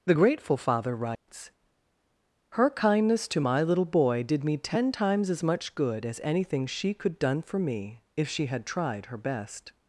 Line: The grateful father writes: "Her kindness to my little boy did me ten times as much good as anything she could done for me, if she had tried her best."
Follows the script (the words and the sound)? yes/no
no